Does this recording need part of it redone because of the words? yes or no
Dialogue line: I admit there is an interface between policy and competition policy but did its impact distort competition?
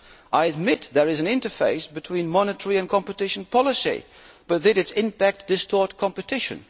yes